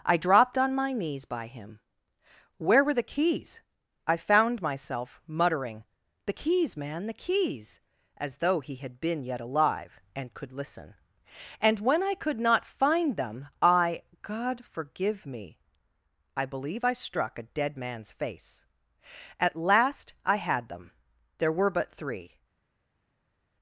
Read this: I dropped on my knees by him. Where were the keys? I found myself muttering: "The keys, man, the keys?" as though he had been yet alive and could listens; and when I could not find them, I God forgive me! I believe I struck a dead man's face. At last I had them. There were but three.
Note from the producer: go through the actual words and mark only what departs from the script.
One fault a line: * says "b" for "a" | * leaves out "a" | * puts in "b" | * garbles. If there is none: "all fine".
* says "listen" for "listens"